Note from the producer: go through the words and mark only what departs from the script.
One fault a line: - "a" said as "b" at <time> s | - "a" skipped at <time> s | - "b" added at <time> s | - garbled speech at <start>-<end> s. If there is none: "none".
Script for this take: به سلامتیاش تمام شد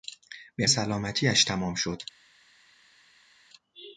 none